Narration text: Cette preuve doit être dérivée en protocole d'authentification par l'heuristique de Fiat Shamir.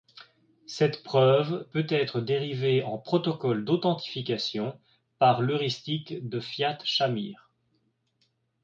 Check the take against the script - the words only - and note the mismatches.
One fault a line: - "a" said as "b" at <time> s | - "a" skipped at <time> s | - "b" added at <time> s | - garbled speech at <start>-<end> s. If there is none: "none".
- "doit" said as "peut" at 1.7 s